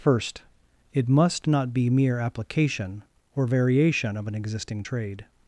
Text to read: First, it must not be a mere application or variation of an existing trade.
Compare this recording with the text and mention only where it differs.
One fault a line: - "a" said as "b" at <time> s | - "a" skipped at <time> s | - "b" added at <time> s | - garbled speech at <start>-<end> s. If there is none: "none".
- "a" skipped at 1.9 s